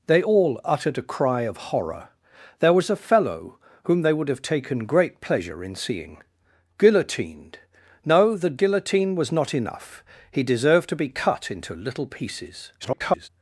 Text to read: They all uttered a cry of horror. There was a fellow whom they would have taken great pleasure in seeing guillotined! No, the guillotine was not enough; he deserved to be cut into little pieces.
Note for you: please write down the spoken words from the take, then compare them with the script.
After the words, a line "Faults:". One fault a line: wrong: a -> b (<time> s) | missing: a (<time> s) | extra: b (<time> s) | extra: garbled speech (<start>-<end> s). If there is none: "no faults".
They all uttered a cry of horror. There was a fellow whom they would have taken great pleasure in seeing guillotined! No, the guillotine was not enough; he deserved to be cut into little pieces. [garbled]
Faults:
extra: garbled speech (12.8-13.3 s)